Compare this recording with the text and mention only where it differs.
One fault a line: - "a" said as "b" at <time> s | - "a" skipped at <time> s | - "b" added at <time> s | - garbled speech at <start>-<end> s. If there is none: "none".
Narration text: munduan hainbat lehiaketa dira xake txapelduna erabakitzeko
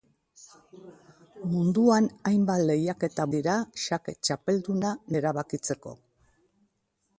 none